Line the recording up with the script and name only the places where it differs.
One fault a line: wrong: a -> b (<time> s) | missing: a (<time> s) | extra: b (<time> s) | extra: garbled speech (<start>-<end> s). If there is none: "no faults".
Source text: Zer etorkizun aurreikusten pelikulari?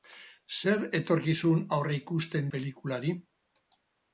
no faults